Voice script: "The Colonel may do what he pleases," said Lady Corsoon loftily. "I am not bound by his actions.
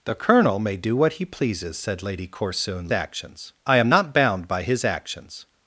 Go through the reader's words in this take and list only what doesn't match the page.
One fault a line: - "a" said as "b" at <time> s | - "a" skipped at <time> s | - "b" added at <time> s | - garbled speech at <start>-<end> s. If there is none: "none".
- "loftily" said as "actions" at 2.9 s